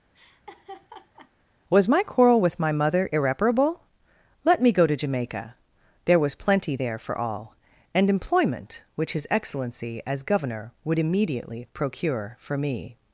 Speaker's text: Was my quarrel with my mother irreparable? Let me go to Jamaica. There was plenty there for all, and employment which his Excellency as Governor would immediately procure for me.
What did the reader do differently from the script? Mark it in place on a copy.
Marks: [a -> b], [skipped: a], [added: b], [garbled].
Was my quarrel with my mother irreparable? Let me go to Jamaica. There was plenty there for all, and employment which his Excellency as Governor would immediately procure for me.